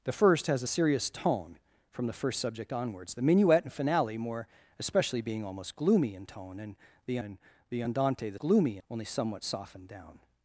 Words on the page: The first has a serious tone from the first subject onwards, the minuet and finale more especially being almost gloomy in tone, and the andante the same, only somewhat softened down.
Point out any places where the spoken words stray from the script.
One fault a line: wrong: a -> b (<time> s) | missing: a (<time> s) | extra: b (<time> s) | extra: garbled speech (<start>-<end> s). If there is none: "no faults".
extra: and the (7.2 s)
wrong: same -> gloomy (8.4 s)